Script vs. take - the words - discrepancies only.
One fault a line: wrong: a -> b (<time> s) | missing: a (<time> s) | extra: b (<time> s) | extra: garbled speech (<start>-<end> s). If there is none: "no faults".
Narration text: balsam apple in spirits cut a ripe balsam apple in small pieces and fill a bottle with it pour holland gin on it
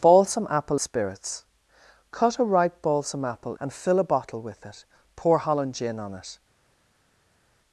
missing: in (0.8 s)
missing: in small pieces (3.6 s)